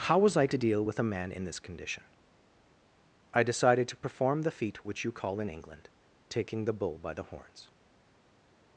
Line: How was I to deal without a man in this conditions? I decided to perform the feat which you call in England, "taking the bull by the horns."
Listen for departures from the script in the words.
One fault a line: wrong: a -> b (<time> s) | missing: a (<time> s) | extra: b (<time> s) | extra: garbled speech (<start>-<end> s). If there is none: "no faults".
wrong: without -> with (0.8 s)
wrong: conditions -> condition (1.6 s)